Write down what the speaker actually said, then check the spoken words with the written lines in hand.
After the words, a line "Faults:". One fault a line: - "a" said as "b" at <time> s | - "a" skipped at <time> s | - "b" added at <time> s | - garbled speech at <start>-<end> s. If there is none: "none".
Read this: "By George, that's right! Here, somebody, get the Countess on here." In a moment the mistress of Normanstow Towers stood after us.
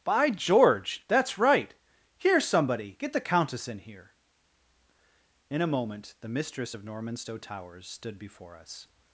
"By George, that's right! Here, somebody, get the Countess in here." In a moment the mistress of Normanstow Towers stood before us.
Faults:
- "on" said as "in" at 3.7 s
- "after" said as "before" at 8.2 s